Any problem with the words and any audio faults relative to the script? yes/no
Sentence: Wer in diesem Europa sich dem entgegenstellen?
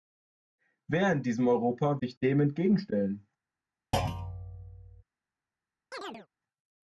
yes